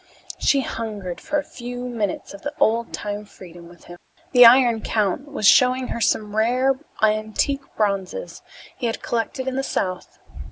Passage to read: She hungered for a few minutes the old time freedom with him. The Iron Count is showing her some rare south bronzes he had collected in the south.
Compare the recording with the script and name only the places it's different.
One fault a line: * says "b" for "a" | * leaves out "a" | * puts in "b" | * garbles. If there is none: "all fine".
* puts in "of"
* says "was" for "is"
* says "antique" for "south"